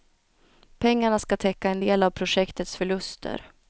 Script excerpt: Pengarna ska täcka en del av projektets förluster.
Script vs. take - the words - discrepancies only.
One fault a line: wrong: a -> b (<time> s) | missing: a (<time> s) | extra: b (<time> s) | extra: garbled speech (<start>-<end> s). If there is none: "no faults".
no faults